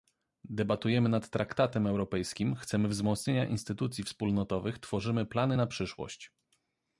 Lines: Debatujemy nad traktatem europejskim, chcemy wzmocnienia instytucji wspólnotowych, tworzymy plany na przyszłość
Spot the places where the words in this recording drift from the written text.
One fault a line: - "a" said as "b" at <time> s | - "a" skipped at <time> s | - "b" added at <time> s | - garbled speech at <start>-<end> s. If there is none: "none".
none